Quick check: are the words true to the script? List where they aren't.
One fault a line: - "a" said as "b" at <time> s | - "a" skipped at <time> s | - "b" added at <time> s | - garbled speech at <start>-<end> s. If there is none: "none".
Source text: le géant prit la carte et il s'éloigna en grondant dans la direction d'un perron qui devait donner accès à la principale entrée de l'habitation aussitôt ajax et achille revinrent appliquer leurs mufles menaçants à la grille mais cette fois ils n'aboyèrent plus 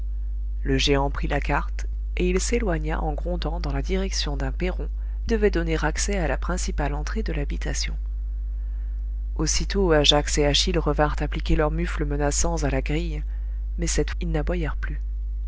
- "qui" skipped at 4.9 s
- "fois" skipped at 14.1 s